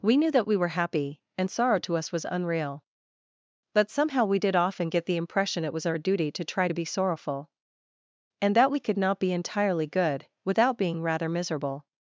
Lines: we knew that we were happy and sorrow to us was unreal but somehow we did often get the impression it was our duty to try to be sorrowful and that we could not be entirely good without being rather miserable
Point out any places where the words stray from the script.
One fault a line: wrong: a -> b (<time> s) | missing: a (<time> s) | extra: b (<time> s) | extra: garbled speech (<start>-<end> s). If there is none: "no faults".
no faults